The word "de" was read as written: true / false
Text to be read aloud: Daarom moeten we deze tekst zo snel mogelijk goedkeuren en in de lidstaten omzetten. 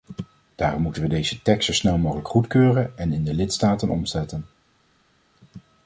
true